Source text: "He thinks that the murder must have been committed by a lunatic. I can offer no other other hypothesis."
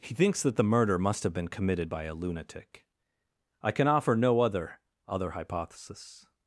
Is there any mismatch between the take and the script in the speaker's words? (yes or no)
no